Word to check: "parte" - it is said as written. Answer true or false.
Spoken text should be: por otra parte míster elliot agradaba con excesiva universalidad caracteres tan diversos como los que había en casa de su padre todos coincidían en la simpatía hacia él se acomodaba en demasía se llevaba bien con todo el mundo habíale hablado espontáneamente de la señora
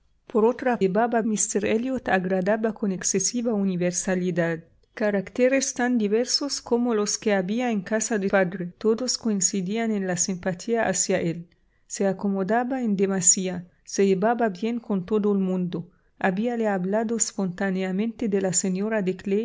false